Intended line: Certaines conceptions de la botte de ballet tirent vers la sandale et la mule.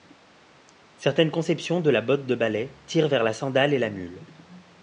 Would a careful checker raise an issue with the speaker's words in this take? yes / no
no